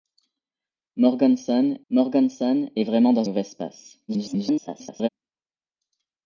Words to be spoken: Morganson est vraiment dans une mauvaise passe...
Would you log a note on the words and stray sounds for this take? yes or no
yes